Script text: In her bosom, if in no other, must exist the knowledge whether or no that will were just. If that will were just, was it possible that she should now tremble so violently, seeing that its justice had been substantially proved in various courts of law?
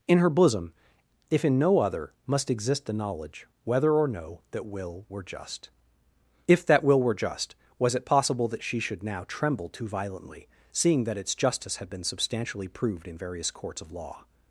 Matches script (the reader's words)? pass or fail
fail